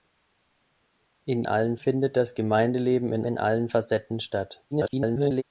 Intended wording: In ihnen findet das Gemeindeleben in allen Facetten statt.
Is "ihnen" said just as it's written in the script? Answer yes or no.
no